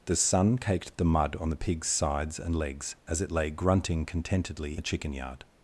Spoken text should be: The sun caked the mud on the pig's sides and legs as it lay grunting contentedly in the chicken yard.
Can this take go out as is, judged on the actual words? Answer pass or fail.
fail